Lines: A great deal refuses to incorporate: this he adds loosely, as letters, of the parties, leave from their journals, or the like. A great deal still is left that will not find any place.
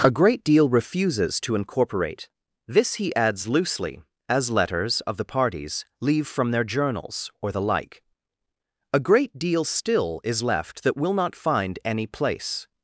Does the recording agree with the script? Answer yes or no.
yes